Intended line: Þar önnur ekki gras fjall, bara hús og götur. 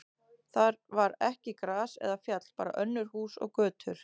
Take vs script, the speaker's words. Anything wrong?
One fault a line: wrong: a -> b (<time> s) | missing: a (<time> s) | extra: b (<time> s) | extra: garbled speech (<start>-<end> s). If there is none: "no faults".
wrong: önnur -> var (1.0 s)
extra: eða (2.1 s)
extra: önnur (2.9 s)